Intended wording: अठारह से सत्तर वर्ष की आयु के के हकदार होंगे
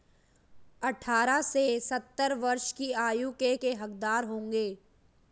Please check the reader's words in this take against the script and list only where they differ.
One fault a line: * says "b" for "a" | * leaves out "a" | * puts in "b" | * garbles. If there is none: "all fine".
all fine